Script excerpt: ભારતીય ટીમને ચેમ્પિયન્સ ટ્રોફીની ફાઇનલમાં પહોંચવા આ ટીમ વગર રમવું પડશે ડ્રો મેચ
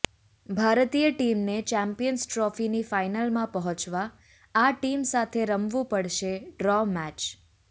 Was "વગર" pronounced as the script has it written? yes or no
no